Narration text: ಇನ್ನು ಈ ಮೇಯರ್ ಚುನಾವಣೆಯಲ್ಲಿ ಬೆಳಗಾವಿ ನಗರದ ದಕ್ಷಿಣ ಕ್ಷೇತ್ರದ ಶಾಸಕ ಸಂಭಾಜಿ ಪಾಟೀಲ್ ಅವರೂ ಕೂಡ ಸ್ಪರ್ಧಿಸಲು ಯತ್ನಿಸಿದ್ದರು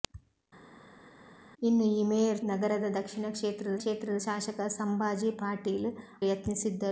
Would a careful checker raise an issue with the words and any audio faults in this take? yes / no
yes